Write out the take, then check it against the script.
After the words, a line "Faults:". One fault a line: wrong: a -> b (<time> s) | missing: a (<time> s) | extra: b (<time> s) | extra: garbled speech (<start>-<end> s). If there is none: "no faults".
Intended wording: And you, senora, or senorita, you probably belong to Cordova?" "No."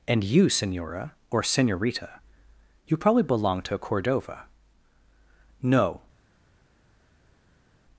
And you, senora, or senorita, you probably belong to Cordova?" "No."
Faults:
no faults